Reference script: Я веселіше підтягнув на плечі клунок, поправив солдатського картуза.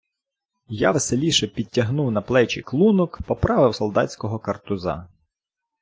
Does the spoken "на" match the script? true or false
true